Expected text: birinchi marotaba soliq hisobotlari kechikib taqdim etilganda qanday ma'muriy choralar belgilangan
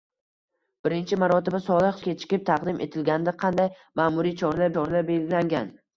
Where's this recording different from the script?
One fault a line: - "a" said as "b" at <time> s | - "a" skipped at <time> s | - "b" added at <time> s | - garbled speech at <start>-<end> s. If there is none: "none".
- "hisobotlari" skipped at 2.0 s
- "choralar" added at 4.8 s